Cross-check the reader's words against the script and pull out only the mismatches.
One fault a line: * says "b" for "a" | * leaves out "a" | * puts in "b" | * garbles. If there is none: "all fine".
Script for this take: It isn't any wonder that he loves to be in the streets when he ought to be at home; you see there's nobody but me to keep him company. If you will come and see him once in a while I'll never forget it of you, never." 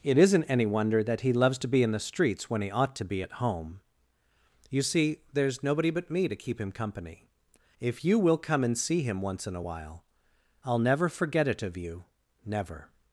all fine